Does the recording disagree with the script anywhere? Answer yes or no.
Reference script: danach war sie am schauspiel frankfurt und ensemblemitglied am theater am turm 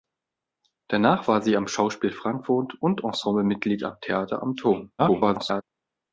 yes